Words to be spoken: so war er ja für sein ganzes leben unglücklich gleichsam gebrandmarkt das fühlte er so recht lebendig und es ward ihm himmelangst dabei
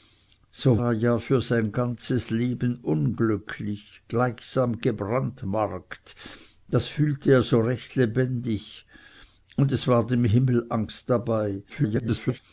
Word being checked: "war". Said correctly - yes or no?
no